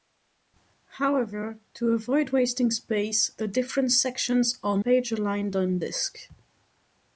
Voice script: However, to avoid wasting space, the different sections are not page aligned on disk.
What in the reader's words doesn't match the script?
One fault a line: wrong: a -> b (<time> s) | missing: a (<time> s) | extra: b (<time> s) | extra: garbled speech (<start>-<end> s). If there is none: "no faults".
missing: not (4.8 s)